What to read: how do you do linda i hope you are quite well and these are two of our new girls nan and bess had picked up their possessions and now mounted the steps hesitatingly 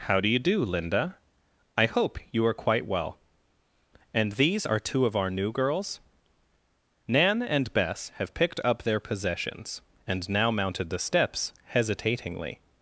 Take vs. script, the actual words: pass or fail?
fail